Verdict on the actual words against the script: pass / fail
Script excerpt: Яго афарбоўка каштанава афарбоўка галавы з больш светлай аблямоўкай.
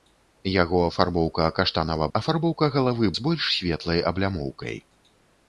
pass